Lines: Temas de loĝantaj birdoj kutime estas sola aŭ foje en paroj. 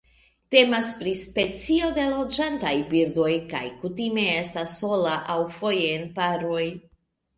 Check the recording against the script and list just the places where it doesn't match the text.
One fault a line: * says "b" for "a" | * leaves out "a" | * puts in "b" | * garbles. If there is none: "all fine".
* puts in "pri specio"
* puts in "kaj"